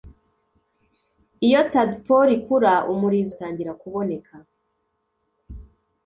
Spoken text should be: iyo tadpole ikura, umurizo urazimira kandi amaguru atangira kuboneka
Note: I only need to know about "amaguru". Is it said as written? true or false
false